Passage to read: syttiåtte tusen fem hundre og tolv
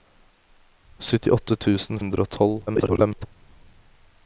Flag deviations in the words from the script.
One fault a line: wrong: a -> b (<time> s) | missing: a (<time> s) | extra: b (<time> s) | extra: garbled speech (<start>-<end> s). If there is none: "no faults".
missing: fem (2.0 s)
extra: garbled speech (2.7-3.3 s)